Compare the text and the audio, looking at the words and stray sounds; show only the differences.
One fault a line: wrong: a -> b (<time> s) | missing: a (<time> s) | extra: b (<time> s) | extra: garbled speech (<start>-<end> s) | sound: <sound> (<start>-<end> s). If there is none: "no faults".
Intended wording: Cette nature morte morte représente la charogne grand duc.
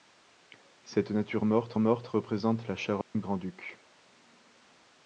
sound: dropout (3.0-3.1 s)